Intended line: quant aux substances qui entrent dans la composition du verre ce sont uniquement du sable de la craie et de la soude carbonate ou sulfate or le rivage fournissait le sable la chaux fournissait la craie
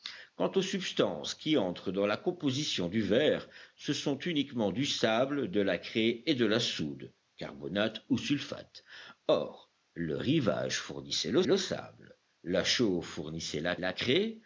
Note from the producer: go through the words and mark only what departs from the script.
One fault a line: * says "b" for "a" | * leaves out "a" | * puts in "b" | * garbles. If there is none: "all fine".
* puts in "le"
* puts in "la"